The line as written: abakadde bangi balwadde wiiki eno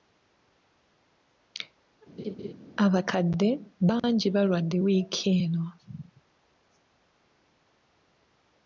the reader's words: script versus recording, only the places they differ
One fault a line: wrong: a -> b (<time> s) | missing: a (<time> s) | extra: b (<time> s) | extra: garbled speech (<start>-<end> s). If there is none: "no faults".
no faults